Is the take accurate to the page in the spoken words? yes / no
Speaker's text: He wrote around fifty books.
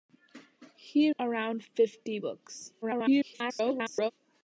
no